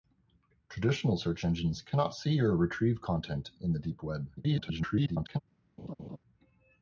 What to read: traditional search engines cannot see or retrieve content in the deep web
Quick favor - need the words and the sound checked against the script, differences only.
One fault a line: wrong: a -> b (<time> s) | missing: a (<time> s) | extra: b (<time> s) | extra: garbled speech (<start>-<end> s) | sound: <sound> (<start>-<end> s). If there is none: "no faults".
extra: garbled speech (4.4-5.4 s)
sound: laugh (5.8-6.2 s)